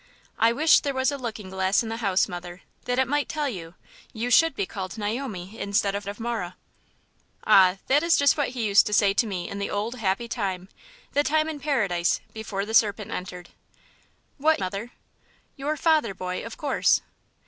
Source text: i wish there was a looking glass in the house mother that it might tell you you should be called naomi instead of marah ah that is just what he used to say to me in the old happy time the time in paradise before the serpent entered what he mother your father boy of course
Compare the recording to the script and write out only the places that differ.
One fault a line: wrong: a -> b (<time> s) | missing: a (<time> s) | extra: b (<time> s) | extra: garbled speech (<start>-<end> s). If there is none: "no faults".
extra: of (6.1 s)
missing: he (14.6 s)